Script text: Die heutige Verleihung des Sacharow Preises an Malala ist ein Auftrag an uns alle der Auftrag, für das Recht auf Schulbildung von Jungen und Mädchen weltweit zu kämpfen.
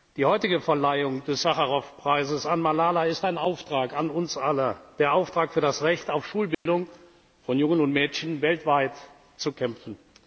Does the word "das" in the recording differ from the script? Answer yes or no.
no